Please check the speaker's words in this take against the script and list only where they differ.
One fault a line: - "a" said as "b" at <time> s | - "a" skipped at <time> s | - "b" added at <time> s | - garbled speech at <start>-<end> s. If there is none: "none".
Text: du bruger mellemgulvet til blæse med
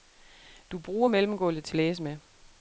none